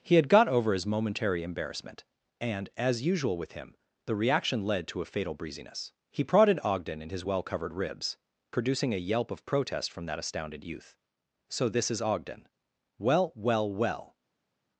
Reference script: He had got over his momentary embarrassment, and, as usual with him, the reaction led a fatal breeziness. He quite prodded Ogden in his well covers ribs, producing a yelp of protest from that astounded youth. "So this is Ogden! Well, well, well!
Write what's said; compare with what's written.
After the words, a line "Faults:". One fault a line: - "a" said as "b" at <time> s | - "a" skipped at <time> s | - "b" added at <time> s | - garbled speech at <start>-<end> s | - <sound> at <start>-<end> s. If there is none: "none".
He had got over his momentary embarrassment, and, as usual with him, the reaction led to a fatal breeziness. He prodded Ogden in his well covered ribs, producing a yelp of protest from that astounded youth. "So this is Ogden! Well, well, well!
Faults:
- "to" added at 4.9 s
- "quite" skipped at 6.2 s
- "covers" said as "covered" at 7.4 s